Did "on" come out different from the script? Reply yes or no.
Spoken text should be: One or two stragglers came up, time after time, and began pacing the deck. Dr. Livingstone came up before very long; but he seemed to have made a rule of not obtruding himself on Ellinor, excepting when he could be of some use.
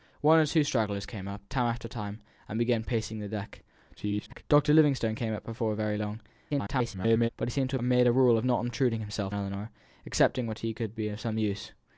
yes